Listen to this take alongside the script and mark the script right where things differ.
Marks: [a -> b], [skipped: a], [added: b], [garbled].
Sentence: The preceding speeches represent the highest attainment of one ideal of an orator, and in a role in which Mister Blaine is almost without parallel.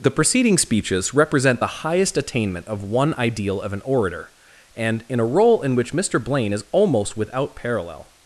The preceding speeches represent the highest attainment of one ideal of an orator, and in a role in which Mister Blaine is almost without parallel.